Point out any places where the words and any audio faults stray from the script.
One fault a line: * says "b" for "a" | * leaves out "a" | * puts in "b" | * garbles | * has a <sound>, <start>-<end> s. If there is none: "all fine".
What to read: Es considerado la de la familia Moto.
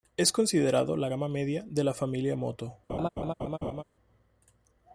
* puts in "gama media"
* has a laugh, 2.9-3.8 s